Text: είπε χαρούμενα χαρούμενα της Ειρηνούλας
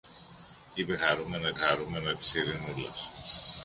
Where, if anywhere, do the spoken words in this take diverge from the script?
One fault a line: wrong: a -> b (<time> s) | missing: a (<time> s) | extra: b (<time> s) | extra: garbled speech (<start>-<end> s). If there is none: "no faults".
no faults